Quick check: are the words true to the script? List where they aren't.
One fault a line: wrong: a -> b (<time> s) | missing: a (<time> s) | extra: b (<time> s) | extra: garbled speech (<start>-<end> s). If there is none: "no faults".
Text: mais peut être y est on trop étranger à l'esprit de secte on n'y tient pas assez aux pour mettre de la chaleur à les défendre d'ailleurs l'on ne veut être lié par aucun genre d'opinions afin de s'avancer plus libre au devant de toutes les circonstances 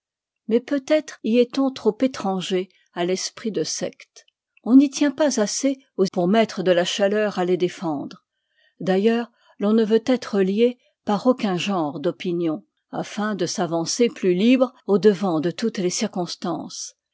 no faults